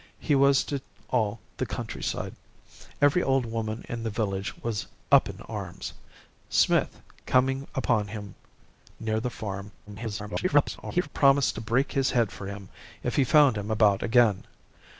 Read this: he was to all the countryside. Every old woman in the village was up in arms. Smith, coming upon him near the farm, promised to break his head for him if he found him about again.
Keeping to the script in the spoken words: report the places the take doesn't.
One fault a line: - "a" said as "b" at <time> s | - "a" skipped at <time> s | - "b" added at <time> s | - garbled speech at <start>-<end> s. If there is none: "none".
- garbled speech at 9.9-11.1 s